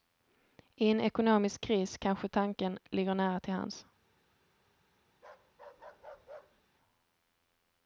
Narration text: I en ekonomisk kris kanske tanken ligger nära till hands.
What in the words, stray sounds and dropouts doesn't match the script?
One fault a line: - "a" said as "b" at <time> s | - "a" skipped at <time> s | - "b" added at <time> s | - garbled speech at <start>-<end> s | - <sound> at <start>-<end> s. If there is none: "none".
- bark at 5.1-6.6 s